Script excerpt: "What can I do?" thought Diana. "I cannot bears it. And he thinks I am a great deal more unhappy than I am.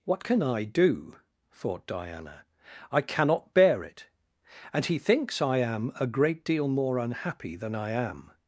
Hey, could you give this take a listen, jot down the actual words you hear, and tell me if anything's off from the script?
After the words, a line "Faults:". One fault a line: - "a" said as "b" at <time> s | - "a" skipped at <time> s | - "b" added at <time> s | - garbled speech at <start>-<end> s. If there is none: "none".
"What can I do?" thought Diana. "I cannot bear it. And he thinks I am a great deal more unhappy than I am.
Faults:
- "bears" said as "bear" at 3.5 s